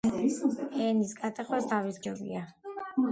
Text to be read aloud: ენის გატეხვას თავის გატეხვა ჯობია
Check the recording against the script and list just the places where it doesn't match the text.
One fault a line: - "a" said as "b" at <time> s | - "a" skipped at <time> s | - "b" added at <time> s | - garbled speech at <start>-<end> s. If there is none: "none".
- "გატეხვა" skipped at 2.0 s